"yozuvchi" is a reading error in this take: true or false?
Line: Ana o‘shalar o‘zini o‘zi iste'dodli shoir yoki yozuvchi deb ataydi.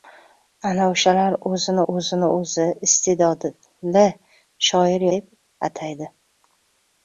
true